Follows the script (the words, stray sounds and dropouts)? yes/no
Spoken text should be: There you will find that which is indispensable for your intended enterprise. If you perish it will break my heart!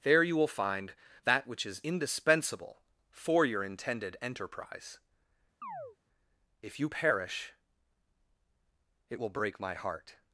no